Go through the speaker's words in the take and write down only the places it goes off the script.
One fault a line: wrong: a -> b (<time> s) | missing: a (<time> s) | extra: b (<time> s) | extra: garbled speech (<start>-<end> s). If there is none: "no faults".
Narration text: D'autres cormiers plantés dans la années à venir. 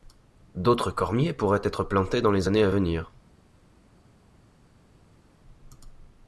extra: pourraient être (1.3 s)
wrong: la -> les (2.3 s)